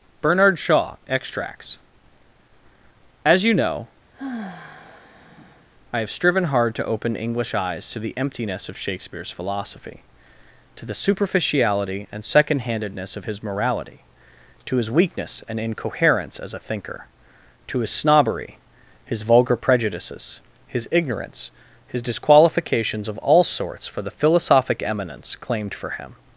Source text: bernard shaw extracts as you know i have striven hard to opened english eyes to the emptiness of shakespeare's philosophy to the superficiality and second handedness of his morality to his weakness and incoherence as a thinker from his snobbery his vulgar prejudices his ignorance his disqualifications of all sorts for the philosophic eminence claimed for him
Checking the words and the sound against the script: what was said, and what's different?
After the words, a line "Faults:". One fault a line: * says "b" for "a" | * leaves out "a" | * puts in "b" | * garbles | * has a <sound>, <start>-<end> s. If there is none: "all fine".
bernard shaw extracts as you know i have striven hard to open english eyes to the emptiness of shakespeare's philosophy to the superficiality and second handedness of his morality to his weakness and incoherence as a thinker to his snobbery his vulgar prejudices his ignorance his disqualifications of all sorts for the philosophic eminence claimed for him
Faults:
* has a sigh, 4.1-5.7 s
* says "open" for "opened"
* says "to" for "from"